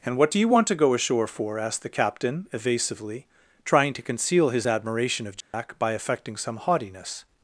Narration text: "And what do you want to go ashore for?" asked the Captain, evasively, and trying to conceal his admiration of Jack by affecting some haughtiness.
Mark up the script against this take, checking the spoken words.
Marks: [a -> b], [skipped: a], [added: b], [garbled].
"And what do you want to go ashore for?" asked the Captain, evasively, [skipped: and] trying to conceal his admiration of Jack by affecting some haughtiness.